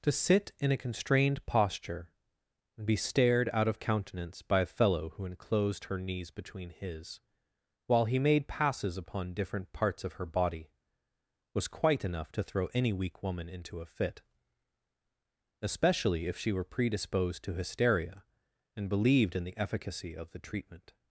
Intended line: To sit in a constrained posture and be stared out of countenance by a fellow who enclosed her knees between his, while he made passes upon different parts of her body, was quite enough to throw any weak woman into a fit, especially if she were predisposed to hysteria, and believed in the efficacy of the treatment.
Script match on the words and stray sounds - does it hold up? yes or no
yes